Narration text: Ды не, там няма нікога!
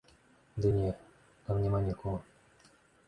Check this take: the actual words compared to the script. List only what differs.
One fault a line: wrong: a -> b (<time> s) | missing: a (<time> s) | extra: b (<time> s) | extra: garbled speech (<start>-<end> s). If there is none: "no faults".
no faults